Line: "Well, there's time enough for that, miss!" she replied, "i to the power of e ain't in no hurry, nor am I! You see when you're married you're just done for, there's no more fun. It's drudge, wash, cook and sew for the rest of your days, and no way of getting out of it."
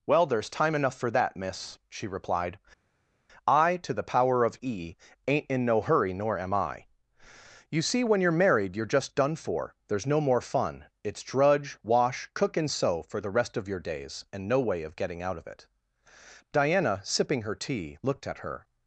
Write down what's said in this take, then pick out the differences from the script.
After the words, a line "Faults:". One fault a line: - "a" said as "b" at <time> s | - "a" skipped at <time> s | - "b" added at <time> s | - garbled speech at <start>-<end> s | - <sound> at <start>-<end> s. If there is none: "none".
"Well, there's time enough for that, miss!" she replied, "i to the power of e ain't in no hurry, nor am I! You see when you're married you're just done for, there's no more fun. It's drudge, wash, cook and sew for the rest of your days, and no way of getting out of it." Diana, sipping her tea, looked at her
Faults:
- "Diana sipping her tea looked at her" added at 16.5 s